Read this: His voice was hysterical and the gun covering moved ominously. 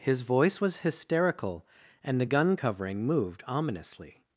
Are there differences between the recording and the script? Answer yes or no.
no